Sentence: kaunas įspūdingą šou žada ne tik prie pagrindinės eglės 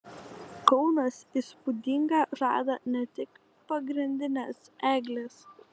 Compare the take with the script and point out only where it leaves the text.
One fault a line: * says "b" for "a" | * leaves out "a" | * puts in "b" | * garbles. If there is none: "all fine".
* leaves out "šou"
* leaves out "prie"